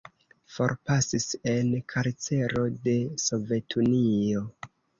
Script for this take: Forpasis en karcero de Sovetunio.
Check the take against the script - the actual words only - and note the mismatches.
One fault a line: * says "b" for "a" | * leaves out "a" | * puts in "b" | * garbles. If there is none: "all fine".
all fine